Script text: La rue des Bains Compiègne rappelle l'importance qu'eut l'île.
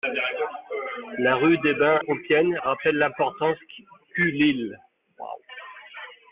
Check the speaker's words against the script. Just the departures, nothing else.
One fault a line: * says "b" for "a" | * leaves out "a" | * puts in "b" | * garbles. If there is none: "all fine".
all fine